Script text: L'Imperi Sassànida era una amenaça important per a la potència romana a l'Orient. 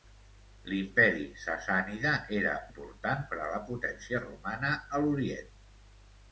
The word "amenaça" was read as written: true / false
false